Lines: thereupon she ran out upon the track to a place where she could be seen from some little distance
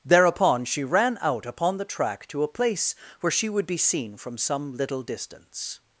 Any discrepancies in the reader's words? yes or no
yes